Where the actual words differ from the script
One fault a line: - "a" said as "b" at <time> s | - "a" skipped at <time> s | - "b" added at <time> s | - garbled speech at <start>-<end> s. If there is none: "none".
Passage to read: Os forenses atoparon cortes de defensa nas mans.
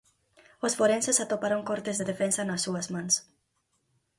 - "súas" added at 2.7 s